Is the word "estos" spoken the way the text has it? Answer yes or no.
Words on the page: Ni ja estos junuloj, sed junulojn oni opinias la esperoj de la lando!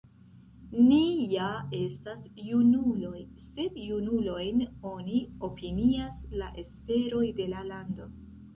no